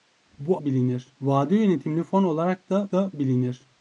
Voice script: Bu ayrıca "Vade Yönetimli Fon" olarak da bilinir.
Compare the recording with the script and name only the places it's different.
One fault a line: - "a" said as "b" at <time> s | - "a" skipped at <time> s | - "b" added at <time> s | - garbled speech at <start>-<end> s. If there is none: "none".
- "ayrıca" said as "bilinir" at 0.6 s
- "da" added at 2.9 s